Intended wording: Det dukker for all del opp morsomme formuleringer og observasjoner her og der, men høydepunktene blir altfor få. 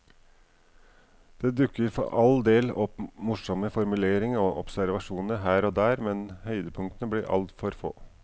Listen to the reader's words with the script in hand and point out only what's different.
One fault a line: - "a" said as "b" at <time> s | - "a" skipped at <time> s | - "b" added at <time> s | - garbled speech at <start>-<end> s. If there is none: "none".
none